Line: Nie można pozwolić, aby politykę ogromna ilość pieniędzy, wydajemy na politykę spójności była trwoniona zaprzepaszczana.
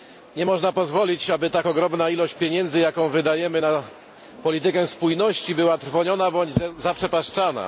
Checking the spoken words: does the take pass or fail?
fail